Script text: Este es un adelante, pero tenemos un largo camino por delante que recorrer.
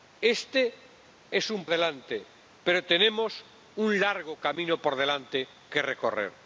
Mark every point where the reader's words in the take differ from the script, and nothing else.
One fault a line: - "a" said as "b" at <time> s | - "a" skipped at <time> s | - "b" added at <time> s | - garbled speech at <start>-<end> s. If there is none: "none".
none